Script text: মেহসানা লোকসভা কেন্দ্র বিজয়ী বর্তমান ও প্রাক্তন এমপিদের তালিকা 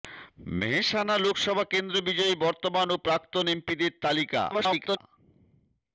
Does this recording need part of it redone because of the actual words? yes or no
yes